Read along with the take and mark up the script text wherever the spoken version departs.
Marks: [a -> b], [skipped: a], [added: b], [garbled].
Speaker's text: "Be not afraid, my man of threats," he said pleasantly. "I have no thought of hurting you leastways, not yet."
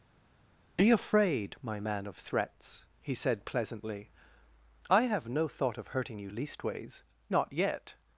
"Be [skipped: not] afraid, my man of threats," he said pleasantly. "I have no thought of hurting you leastways, not yet."